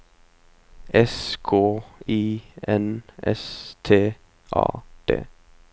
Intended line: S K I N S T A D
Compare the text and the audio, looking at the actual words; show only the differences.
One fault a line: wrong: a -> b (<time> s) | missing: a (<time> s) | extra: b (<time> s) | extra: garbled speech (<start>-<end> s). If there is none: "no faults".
no faults